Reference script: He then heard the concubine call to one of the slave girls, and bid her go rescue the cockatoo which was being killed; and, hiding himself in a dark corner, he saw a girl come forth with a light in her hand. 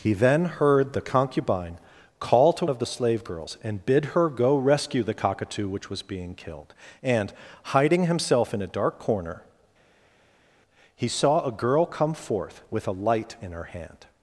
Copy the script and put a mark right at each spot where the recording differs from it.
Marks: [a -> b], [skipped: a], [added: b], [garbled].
He then heard the concubine call to [skipped: one] of the slave girls, and bid her go rescue the cockatoo which was being killed; and, hiding himself in a dark corner, he saw a girl come forth with a light in her hand.